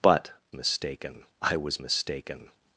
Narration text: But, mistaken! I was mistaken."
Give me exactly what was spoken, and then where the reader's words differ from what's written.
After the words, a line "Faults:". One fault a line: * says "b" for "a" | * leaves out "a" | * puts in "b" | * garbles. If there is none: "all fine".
But, mistaken! I was mistaken."
Faults:
all fine